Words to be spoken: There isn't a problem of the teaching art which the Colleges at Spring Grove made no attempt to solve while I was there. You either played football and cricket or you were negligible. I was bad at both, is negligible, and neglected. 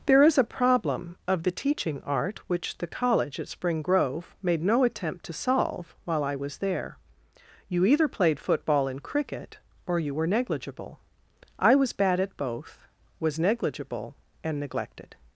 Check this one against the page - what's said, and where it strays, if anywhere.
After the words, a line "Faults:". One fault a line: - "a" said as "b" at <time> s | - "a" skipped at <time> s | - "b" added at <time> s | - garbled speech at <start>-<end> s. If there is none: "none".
There is a problem of the teaching art which the College at Spring Grove made no attempt to solve while I was there. You either played football and cricket or you were negligible. I was bad at both, was negligible, and neglected.
Faults:
- "isn't" said as "is" at 0.2 s
- "Colleges" said as "College" at 2.9 s
- "is" said as "was" at 13.2 s